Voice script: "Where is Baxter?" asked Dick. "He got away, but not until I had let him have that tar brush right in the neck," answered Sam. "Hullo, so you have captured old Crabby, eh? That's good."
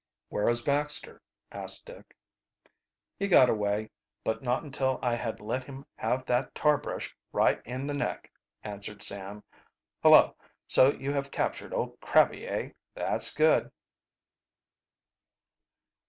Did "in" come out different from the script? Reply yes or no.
no